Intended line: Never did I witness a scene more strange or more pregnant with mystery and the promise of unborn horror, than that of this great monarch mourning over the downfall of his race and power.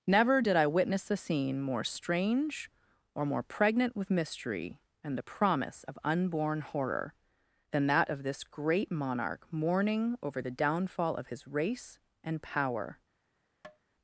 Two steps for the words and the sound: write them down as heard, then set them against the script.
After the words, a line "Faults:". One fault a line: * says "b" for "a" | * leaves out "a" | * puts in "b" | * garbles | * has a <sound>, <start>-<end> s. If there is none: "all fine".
Never did I witness a scene more strange or more pregnant with mystery and the promise of unborn horror, than that of this great monarch mourning over the downfall of his race and power.
Faults:
* has a tap, 13.6-13.8 s